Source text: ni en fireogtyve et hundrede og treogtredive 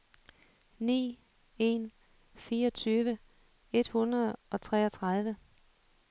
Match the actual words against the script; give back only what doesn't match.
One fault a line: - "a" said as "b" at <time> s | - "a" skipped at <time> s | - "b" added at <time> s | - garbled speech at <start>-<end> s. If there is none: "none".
none